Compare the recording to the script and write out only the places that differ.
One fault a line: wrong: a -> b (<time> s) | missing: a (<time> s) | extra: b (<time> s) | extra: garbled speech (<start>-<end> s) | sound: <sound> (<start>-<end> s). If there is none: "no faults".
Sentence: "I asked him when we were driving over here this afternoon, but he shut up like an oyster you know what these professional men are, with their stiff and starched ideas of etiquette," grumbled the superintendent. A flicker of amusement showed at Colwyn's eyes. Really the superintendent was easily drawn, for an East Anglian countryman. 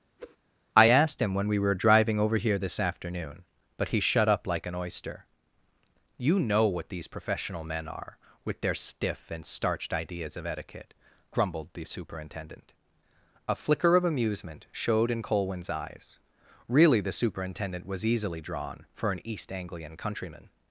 sound: whoosh (0.2-0.4 s)
wrong: at -> in (15.1 s)